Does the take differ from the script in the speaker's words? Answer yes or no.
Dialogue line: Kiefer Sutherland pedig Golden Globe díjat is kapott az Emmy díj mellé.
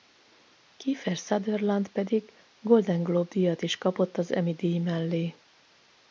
no